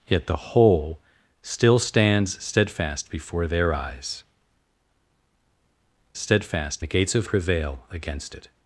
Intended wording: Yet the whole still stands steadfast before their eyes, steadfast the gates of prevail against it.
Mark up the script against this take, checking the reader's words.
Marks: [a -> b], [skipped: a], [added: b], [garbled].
Yet the whole still stands steadfast before their eyes, steadfast the gates of prevail against it.